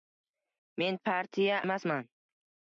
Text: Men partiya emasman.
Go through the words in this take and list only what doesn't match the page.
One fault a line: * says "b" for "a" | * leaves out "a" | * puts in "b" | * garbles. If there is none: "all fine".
all fine